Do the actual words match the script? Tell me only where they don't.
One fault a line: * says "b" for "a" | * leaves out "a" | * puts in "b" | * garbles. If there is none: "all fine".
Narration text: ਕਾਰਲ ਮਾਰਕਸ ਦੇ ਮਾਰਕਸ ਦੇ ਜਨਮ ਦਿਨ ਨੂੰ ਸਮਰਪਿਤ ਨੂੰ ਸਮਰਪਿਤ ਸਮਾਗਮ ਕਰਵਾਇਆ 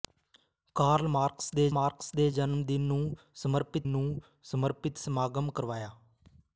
all fine